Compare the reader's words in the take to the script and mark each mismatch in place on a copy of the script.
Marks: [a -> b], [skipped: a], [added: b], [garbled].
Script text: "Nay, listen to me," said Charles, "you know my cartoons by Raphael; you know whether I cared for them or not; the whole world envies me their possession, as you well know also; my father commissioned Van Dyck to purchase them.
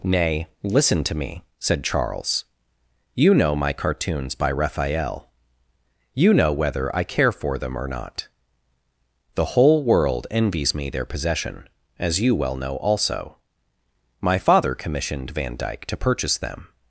"Nay, listen to me," said Charles, "you know my cartoons by Raphael; you know whether I [cared -> care] for them or not; the whole world envies me their possession, as you well know also; my father commissioned Van Dyck to purchase them.